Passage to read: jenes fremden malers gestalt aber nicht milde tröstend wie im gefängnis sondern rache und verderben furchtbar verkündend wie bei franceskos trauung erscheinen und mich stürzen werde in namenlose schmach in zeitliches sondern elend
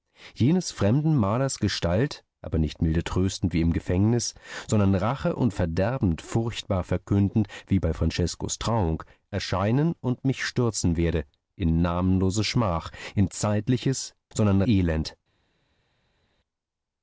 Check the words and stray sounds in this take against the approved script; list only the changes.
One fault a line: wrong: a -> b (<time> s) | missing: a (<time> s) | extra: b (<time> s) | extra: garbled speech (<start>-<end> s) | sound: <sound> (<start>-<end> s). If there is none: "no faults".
no faults